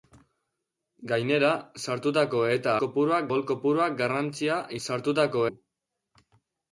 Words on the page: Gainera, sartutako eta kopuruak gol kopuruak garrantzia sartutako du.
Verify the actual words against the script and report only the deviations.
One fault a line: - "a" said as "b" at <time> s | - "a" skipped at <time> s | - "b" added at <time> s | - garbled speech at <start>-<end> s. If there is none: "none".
none